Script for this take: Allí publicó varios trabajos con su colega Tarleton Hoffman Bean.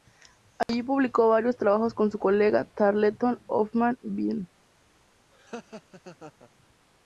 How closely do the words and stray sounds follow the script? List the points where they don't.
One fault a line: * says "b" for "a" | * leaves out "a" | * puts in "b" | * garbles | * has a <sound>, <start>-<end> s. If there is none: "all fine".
* has a dropout, 0.6-0.7 s
* has a laugh, 5.3-6.5 s